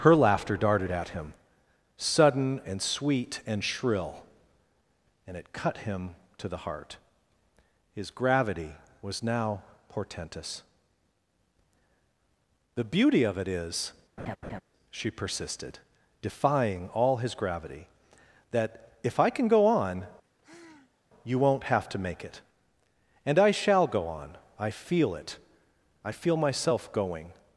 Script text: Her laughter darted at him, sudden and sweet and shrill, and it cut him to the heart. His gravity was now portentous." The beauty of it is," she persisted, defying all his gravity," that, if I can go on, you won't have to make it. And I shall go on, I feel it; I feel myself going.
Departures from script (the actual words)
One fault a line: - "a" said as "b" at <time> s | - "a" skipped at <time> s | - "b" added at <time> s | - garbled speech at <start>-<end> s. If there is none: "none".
none